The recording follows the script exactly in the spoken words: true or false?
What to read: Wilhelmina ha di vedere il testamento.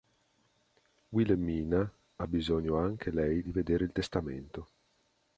false